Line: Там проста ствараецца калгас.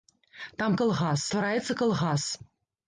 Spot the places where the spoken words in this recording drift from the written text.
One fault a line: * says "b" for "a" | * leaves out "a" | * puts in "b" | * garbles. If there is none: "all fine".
* says "калгас" for "проста"